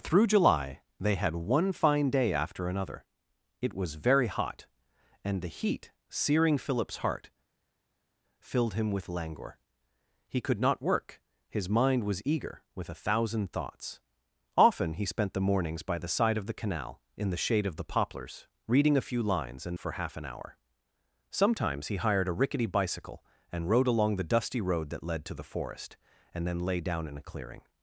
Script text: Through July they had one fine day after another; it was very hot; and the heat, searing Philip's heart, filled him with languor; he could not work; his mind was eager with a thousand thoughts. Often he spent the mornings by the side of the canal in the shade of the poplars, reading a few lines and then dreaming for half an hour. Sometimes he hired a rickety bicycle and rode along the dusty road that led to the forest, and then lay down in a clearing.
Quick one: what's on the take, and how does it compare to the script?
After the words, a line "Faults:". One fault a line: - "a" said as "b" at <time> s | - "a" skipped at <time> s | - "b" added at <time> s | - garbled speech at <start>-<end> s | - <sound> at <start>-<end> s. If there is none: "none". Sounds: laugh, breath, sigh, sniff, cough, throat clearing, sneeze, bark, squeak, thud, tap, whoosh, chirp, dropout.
Through July they had one fine day after another; it was very hot; and the heat, searing Philip's heart, filled him with languor; he could not work; his mind was eager with a thousand thoughts. Often he spent the mornings by the side of the canal in the shade of the poplars, reading a few lines and for half an hour. Sometimes he hired a rickety bicycle and rode along the dusty road that led to the forest, and then lay down in a clearing.
Faults:
- "then dreaming" skipped at 19.8 s